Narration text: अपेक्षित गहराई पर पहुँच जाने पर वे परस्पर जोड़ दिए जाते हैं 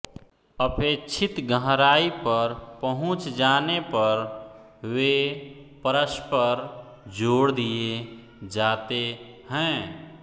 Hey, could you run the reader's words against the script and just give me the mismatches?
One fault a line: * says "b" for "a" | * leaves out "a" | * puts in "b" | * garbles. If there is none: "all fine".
all fine